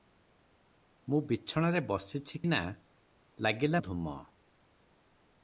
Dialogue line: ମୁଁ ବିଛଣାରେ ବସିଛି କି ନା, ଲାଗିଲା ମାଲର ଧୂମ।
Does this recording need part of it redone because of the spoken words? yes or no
yes